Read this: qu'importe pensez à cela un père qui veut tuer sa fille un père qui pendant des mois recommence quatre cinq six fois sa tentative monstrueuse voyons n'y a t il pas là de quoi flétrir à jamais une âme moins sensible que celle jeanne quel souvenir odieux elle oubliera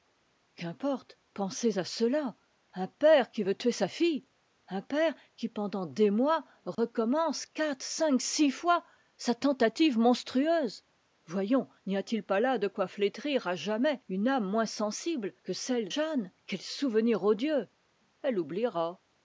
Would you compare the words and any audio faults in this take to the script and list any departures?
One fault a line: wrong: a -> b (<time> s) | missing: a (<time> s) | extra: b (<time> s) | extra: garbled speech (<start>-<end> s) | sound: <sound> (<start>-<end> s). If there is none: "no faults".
sound: dropout (6.7-6.8 s)